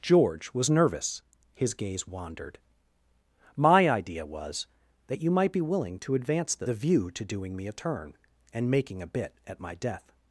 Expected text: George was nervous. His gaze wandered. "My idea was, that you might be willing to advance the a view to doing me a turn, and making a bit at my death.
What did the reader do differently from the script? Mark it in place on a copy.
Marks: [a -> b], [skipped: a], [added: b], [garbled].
George was nervous. His gaze wandered. "My idea was, that you might be willing to advance the a view to doing me a turn, and making a bit at my death.